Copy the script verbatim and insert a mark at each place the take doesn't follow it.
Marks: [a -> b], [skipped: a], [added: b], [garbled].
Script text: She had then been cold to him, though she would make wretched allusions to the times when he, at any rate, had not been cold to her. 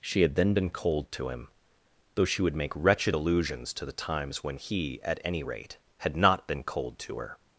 She had then been cold to him, though she would make wretched allusions to the times when he, at any rate, had not been cold to her.